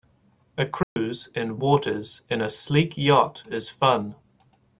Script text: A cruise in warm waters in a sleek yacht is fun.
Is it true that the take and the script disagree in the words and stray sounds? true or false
true